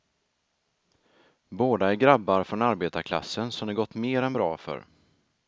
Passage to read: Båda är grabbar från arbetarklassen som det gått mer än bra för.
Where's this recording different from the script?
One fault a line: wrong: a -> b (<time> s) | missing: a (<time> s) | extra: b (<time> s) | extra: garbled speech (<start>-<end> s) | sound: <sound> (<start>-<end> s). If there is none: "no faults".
no faults